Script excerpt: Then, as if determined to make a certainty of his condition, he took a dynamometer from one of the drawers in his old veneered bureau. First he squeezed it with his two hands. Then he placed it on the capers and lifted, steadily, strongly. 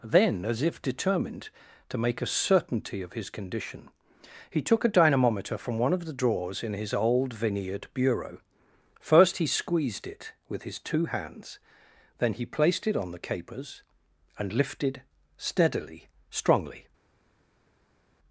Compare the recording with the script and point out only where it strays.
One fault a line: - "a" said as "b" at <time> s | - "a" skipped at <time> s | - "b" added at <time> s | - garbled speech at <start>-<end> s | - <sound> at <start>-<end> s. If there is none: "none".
none